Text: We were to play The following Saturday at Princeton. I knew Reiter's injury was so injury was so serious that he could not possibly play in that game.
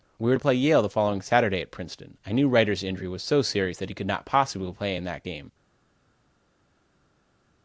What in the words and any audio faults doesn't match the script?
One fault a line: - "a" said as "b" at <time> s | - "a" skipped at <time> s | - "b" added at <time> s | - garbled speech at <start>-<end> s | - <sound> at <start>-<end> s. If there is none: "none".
- "Yale" added at 0.5 s
- "injury was so" skipped at 3.4 s